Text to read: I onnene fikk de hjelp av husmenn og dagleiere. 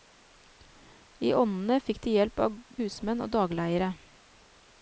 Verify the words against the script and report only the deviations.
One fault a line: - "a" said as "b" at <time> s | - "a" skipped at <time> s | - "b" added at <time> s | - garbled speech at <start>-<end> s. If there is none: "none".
none